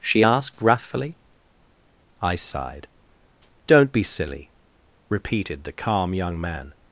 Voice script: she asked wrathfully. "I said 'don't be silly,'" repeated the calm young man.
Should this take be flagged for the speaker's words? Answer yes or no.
yes